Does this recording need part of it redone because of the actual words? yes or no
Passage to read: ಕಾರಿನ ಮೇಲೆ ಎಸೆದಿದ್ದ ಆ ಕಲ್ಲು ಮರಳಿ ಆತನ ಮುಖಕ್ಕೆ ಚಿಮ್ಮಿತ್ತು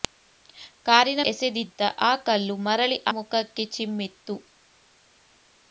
yes